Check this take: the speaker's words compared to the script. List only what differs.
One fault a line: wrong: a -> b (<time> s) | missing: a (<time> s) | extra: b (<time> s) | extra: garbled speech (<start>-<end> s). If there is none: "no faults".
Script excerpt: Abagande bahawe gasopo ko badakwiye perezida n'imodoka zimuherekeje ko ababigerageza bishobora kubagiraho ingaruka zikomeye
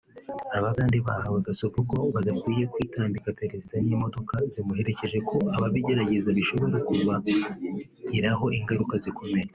extra: kwitambika (2.7 s)